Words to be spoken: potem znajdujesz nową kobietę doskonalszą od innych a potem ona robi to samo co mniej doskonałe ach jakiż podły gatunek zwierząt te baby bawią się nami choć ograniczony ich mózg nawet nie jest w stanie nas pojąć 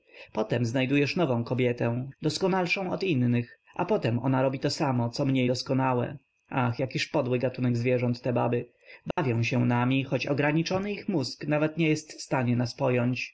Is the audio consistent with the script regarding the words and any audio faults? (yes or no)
no